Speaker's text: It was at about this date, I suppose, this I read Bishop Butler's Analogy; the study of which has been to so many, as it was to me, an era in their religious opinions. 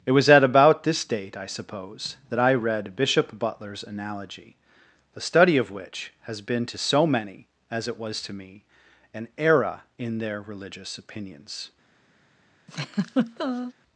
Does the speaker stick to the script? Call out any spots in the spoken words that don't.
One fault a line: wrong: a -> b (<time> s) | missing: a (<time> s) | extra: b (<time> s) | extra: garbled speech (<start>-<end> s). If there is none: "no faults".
wrong: this -> that (2.3 s)